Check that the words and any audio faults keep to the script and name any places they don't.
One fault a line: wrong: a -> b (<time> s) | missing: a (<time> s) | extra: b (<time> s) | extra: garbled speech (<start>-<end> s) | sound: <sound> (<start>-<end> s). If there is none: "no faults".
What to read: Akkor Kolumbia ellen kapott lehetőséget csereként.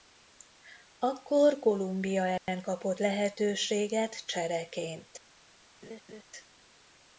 sound: dropout (2.4-2.5 s)
sound: laugh (5.8-6.2 s)